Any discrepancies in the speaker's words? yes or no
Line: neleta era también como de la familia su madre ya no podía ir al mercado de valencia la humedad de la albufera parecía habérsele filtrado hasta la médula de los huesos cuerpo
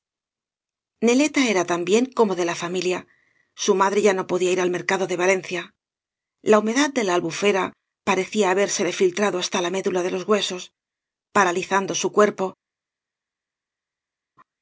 yes